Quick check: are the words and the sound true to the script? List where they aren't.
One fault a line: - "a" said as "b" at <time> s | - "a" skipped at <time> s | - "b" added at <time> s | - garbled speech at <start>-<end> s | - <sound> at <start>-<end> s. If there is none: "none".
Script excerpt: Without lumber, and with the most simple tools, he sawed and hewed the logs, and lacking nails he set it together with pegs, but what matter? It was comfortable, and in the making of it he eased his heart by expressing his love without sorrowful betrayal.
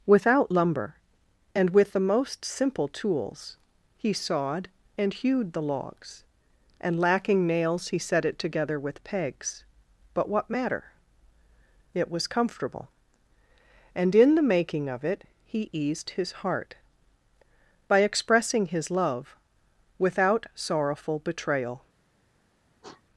- sniff at 22.8-23.0 s